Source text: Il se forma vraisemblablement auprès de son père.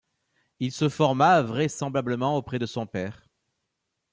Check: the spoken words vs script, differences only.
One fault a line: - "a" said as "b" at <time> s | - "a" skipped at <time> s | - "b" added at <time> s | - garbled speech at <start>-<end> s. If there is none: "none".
none